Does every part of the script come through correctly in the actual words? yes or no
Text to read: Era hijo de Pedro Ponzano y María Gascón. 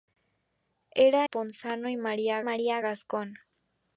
no